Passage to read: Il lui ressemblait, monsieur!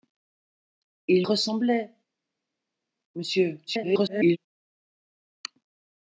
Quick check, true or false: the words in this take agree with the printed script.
false